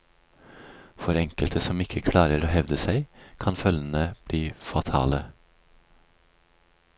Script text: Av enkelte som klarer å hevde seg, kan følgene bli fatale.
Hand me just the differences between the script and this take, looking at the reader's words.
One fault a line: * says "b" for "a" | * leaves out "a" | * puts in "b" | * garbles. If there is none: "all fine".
* says "For" for "Av"
* puts in "ikke"